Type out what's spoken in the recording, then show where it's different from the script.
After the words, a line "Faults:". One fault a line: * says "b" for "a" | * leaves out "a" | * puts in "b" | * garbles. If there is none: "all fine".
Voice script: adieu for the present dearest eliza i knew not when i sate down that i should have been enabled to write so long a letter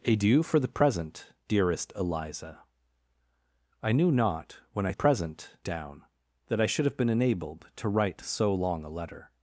adieu for the present dearest eliza i knew not when i present down that i should have been enabled to write so long a letter
Faults:
* says "present" for "sate"